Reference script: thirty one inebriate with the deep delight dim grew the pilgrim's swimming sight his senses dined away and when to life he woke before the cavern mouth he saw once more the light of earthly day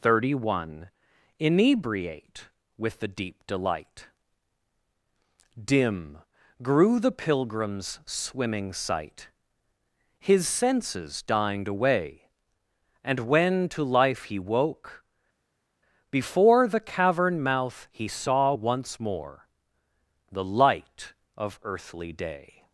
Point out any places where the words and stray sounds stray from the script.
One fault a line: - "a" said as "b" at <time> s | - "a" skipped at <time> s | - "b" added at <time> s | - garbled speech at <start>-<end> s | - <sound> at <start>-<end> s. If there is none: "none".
none